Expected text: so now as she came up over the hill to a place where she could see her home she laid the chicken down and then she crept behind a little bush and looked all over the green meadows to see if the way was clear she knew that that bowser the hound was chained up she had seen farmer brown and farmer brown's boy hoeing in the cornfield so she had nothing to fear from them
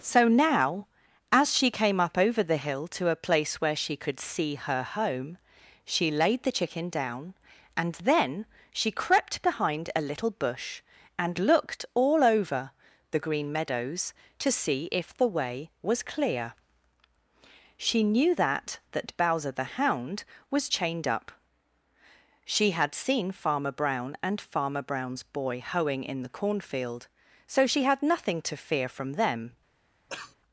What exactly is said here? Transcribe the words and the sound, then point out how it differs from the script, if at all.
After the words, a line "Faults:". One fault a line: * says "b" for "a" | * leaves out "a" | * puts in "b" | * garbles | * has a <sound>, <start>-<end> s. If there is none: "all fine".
so now as she came up over the hill to a place where she could see her home she laid the chicken down and then she crept behind a little bush and looked all over the green meadows to see if the way was clear she knew that that bowser the hound was chained up she had seen farmer brown and farmer brown's boy hoeing in the cornfield so she had nothing to fear from them
Faults:
* has a cough, 30.1-30.4 s